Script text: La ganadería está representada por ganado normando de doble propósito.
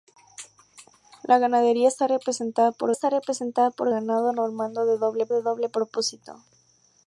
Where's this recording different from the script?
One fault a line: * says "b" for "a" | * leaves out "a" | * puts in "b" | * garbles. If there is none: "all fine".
* puts in "está representada por"
* puts in "de doble"